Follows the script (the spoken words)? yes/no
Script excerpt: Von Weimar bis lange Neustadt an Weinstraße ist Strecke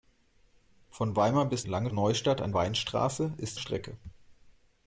yes